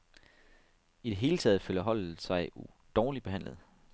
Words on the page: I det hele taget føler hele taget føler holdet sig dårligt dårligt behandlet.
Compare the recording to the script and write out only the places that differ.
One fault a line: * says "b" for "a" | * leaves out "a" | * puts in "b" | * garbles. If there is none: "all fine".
* leaves out "hele taget føler"
* leaves out "dårligt"